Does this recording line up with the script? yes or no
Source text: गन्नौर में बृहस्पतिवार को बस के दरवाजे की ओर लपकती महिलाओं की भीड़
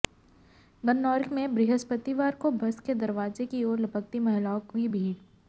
yes